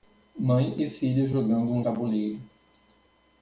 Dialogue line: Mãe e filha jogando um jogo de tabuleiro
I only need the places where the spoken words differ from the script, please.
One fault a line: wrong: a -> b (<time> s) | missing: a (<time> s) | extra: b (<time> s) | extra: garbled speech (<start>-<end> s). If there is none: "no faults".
missing: jogo de (1.8 s)